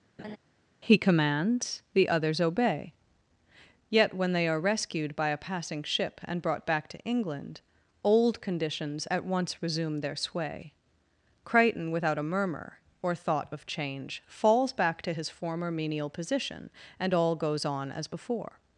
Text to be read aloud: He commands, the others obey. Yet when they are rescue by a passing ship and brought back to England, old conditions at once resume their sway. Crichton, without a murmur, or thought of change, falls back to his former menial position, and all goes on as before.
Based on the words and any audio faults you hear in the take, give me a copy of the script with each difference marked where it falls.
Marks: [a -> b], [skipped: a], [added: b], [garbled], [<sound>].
[laugh] He commands, the others obey. Yet when they are [rescue -> rescued] by a passing ship and brought back to England, old conditions at once resume their sway. Crichton, without a murmur, or thought of change, falls back to his former menial position, and all goes on as before.